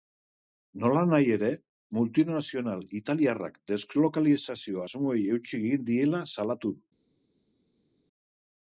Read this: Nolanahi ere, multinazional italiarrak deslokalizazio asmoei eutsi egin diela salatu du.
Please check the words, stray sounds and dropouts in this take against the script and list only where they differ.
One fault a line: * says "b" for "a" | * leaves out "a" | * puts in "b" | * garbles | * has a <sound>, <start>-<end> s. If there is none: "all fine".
all fine